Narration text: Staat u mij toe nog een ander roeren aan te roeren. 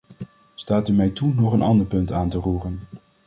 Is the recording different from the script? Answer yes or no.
yes